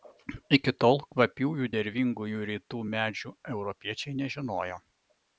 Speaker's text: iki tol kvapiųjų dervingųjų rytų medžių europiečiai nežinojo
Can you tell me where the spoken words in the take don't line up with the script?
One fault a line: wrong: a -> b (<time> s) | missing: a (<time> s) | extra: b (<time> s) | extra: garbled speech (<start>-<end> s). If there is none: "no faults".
no faults